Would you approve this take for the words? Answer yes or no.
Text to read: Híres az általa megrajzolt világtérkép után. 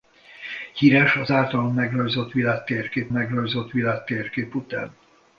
no